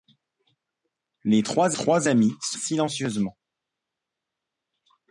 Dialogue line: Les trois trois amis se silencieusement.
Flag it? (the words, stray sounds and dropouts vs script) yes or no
no